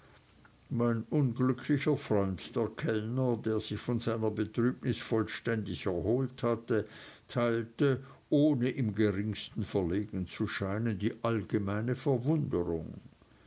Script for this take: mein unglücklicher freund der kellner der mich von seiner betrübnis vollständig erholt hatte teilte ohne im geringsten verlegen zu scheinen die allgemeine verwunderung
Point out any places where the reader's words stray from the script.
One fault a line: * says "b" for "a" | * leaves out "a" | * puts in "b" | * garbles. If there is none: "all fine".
* says "sich" for "mich"